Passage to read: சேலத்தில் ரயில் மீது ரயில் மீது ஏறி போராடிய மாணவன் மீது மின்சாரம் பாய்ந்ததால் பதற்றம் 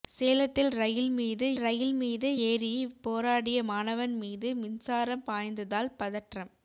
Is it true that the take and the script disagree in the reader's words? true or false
false